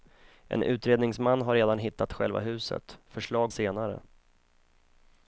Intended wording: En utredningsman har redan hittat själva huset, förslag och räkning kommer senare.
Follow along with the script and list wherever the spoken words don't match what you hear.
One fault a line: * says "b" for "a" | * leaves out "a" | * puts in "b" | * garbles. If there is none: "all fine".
* leaves out "och räkning kommer"